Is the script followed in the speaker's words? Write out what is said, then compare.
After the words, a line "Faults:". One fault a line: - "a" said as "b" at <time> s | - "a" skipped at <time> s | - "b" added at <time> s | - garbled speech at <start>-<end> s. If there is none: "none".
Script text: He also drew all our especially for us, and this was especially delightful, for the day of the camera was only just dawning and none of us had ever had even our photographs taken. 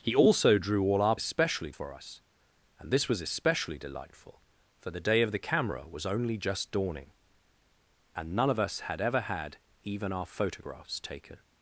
He also drew all our especially for us, and this was especially delightful, for the day of the camera was only just dawning and none of us had ever had even our photographs taken.
Faults:
none